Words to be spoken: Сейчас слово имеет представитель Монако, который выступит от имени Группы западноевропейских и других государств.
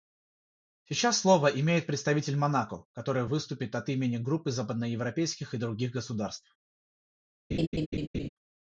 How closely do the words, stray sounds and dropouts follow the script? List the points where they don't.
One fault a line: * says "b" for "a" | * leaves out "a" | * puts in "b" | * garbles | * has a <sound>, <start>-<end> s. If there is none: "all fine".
* has a laugh, 7.5-8.3 s